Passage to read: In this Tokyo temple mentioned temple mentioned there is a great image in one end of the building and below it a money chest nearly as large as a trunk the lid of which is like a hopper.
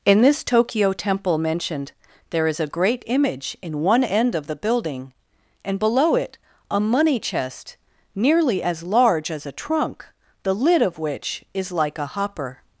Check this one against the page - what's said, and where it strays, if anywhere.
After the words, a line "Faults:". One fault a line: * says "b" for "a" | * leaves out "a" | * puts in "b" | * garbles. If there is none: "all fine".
In this Tokyo temple mentioned there is a great image in one end of the building and below it a money chest nearly as large as a trunk the lid of which is like a hopper.
Faults:
* leaves out "temple mentioned"